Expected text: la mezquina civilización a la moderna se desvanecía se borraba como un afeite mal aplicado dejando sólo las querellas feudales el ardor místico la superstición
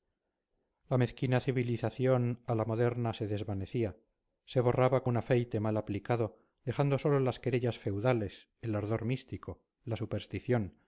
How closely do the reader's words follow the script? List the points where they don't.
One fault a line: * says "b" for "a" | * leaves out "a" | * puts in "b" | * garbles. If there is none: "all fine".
* leaves out "como"